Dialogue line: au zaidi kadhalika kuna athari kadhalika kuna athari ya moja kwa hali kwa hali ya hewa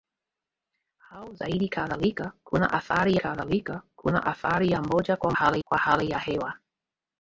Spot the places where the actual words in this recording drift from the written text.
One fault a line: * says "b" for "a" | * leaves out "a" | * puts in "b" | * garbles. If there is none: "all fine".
all fine